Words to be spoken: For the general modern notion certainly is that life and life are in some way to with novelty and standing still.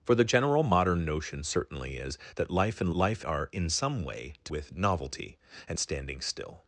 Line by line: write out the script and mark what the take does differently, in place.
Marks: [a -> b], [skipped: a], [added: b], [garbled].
For the general modern notion certainly is that life and life are in some way to with novelty and standing still.